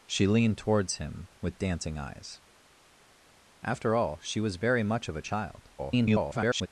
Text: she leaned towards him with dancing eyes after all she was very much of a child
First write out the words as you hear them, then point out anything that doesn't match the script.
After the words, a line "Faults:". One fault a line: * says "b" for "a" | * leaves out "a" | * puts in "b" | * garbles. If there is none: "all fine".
she leaned towards him with dancing eyes after all she was very much of a child [garbled]
Faults:
* garbles